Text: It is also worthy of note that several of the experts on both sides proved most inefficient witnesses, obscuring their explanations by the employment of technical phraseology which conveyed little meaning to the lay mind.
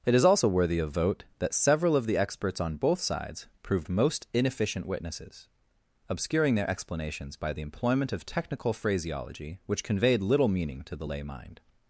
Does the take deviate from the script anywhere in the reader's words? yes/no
yes